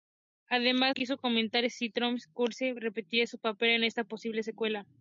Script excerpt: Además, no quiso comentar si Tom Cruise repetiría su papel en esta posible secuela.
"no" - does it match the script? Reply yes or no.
no